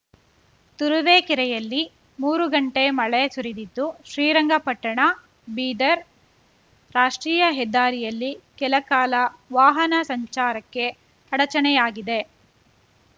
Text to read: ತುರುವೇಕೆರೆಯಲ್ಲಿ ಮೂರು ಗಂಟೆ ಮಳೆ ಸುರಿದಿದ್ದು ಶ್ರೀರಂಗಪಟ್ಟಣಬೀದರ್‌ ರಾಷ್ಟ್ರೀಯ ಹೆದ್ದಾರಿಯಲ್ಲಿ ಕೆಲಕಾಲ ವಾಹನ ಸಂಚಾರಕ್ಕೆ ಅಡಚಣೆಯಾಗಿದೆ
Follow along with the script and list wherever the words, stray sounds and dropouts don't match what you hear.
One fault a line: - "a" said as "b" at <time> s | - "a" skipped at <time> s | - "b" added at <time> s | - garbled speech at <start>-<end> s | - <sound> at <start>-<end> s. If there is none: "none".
none